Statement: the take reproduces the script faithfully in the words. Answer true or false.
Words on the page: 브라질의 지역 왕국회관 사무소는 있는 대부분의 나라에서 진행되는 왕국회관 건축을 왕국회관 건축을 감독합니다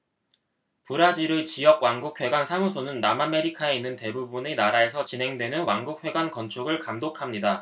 false